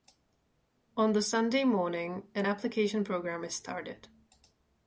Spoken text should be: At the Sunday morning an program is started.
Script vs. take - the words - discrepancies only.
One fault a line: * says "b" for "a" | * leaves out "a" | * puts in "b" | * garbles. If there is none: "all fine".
* says "On" for "At"
* puts in "application"